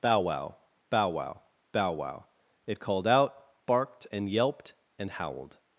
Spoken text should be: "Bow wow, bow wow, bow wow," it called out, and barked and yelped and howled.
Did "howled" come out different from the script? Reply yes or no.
no